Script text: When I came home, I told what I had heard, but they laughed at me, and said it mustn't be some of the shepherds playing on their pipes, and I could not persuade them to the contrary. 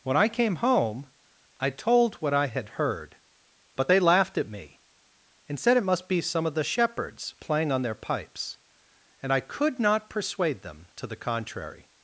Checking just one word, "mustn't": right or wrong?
wrong